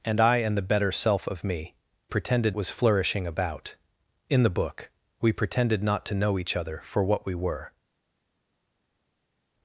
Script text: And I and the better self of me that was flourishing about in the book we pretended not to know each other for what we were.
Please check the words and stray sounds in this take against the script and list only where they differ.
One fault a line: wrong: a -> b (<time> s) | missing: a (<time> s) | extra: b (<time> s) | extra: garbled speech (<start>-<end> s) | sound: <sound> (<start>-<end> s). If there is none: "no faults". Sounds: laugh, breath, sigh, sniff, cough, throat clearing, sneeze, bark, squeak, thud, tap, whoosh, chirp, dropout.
wrong: that -> pretended (2.1 s)